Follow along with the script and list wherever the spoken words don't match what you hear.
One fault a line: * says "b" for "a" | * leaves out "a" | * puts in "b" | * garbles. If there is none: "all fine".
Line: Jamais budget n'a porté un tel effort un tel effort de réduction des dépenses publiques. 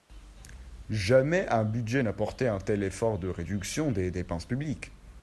* puts in "un"
* leaves out "un tel effort"